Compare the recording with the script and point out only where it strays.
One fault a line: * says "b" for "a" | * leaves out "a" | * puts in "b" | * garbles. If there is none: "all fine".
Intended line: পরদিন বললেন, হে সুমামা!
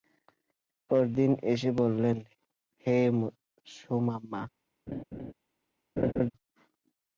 * puts in "এসে"